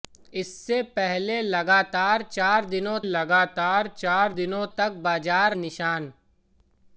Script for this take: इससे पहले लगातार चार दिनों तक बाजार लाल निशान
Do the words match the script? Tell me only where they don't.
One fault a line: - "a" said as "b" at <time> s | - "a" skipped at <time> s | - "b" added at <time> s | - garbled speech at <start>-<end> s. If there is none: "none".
- "लगातार चार दिनों" added at 3.0 s
- "लाल" skipped at 5.6 s